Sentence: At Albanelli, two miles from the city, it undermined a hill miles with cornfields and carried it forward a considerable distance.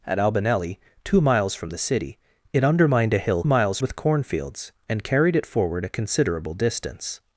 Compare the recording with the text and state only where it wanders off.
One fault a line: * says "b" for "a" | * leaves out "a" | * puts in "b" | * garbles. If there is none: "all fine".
all fine